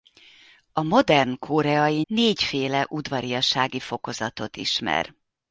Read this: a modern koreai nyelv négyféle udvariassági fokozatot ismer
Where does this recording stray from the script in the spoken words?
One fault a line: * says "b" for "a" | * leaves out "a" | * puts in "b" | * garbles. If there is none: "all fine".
* leaves out "nyelv"